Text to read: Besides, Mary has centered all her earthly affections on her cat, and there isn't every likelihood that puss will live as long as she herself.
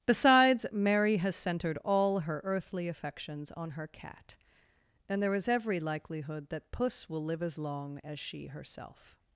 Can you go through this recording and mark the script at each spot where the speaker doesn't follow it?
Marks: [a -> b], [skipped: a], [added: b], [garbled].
Besides, Mary has centered all her earthly affections on her cat, and there [isn't -> is] every likelihood that puss will live as long as she herself.